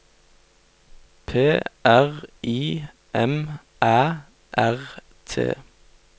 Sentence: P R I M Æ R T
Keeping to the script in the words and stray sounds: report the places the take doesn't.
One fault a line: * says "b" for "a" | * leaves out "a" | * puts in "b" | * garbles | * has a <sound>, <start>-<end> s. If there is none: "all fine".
all fine